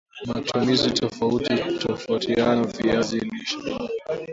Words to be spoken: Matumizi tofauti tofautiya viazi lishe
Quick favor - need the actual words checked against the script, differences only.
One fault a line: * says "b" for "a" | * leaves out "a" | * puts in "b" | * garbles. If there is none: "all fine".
all fine